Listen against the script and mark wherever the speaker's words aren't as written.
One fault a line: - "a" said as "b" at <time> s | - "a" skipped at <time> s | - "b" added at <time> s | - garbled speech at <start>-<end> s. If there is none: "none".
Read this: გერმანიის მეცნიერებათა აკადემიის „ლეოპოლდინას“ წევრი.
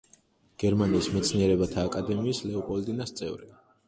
none